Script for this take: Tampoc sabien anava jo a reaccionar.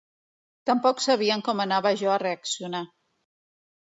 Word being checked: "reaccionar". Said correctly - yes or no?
yes